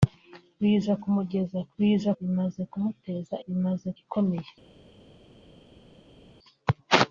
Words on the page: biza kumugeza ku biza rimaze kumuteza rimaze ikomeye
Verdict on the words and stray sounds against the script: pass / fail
pass